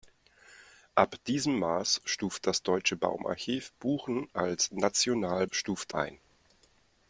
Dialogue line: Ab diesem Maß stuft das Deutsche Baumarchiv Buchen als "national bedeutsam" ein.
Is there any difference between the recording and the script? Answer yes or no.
yes